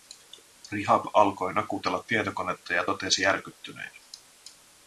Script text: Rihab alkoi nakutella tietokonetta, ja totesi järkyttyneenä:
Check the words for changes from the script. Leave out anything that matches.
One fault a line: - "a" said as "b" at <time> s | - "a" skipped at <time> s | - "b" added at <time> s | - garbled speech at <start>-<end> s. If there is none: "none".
none